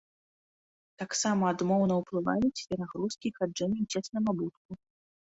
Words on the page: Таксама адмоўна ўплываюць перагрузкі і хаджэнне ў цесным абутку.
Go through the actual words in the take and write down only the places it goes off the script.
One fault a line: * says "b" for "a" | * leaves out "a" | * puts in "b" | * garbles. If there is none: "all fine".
all fine